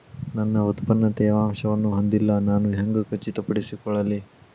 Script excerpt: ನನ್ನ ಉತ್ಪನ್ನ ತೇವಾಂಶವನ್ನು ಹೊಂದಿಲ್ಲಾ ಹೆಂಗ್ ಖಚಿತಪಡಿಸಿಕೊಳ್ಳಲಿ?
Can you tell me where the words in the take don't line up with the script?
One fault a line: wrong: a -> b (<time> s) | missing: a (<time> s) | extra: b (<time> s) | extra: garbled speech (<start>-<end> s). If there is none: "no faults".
extra: ನಾನು (2.4 s)